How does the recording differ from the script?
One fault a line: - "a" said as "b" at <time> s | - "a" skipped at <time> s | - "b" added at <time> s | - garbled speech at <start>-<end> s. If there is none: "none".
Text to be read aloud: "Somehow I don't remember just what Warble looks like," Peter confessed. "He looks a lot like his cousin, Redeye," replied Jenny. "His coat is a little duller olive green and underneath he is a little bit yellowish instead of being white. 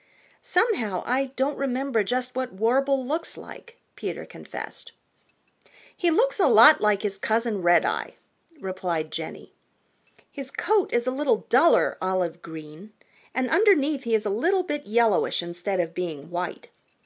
none